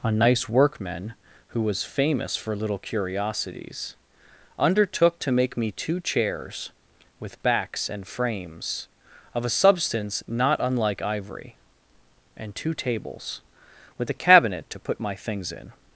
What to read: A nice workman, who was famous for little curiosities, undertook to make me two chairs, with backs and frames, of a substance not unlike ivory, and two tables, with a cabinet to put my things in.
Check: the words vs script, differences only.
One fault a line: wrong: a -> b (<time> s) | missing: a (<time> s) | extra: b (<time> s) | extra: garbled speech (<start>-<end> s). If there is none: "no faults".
no faults